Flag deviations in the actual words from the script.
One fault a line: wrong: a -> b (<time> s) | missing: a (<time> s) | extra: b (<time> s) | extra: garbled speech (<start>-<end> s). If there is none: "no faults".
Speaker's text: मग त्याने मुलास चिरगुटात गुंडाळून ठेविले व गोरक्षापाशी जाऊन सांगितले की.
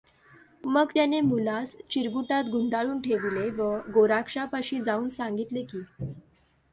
no faults